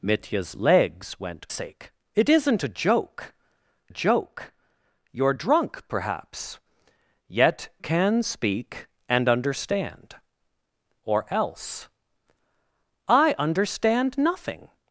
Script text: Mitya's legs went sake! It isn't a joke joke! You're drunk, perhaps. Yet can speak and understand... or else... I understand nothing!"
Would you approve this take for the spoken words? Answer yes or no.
yes